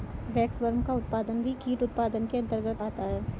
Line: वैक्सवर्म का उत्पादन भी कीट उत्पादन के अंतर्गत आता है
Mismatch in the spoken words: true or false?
false